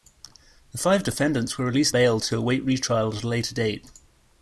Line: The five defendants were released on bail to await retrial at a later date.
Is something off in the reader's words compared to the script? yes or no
yes